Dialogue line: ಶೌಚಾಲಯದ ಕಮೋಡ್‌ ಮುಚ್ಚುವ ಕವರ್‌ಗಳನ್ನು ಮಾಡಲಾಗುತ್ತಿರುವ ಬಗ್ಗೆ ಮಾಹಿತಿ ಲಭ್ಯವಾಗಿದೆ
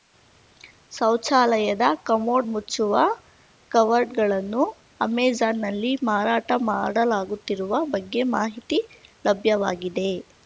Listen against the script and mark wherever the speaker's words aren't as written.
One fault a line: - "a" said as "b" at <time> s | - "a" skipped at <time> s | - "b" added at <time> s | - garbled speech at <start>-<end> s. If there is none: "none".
- "ಅಮೆಜಾನ್‌ನಲ್ಲಿ ಮಾರಾಟ" added at 5.0 s